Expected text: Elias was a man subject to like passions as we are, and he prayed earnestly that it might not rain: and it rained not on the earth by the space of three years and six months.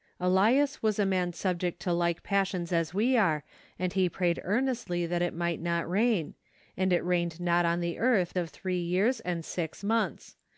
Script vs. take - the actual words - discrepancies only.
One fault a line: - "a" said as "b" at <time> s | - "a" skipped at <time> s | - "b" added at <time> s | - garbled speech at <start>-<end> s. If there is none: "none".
- "by the space" skipped at 8.3 s